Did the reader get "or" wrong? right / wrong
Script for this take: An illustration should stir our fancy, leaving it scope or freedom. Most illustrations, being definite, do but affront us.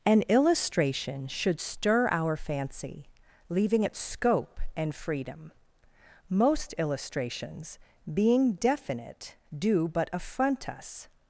wrong